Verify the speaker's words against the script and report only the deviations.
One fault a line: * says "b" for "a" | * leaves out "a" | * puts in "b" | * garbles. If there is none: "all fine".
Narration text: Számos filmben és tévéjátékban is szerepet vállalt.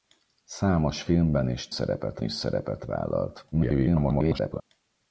* says "szerepet" for "tévéjátékban"
* garbles